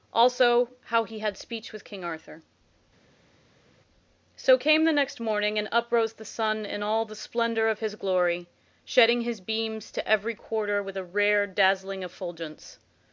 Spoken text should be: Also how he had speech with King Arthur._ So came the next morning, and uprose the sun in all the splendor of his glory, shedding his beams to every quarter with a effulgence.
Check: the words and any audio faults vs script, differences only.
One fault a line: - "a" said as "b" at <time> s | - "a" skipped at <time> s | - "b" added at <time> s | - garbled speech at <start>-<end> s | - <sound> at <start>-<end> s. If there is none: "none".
- "rare dazzling" added at 11.0 s